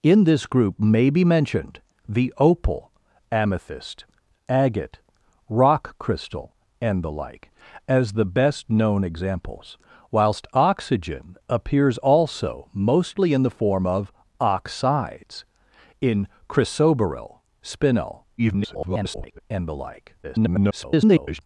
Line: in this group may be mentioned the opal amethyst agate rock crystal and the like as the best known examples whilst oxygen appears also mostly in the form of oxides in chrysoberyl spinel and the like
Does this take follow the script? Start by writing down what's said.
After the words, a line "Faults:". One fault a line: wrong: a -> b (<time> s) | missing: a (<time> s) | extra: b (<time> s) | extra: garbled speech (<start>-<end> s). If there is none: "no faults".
in this group may be mentioned the opal amethyst agate rock crystal and the like as the best known examples whilst oxygen appears also mostly in the form of oxides in chrysoberyl spinel [garbled] and the like [garbled]
Faults:
extra: garbled speech (18.4-19.4 s)
extra: garbled speech (20.2-21.4 s)